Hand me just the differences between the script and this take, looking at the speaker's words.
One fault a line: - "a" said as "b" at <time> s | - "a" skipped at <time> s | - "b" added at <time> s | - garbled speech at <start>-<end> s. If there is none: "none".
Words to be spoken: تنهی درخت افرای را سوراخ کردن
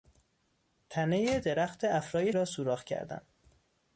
none